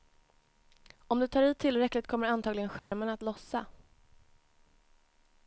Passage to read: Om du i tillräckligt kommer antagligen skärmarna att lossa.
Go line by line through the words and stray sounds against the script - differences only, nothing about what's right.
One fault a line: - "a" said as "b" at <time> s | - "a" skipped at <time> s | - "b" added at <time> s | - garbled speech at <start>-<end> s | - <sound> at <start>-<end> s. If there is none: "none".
- "tar" added at 1.3 s
- dropout at 2.8-2.9 s